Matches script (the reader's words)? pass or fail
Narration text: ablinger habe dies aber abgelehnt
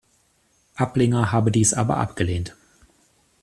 pass